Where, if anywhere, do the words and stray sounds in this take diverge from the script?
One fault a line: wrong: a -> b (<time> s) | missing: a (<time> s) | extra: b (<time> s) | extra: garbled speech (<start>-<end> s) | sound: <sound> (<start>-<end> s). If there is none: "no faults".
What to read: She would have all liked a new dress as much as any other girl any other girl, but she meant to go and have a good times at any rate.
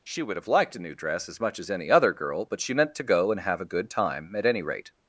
missing: all (0.5 s)
missing: any other girl (2.5 s)
wrong: times -> time (3.9 s)